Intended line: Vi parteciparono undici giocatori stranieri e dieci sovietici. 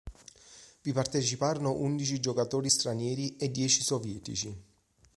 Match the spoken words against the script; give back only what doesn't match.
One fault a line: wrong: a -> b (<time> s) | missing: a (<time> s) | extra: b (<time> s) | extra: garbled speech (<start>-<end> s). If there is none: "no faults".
no faults